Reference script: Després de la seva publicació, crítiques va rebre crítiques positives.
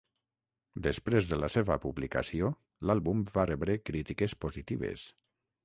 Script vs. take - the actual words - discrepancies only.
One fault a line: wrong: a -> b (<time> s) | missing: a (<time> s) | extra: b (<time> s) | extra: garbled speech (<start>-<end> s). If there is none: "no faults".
wrong: crítiques -> l'àlbum (2.9 s)